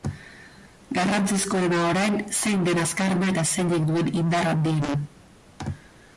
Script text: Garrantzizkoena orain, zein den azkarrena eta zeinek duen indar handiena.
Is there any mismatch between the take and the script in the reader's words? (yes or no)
no